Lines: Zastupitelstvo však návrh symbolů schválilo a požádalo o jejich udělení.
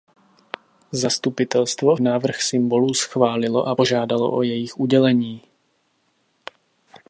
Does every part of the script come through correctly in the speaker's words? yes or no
no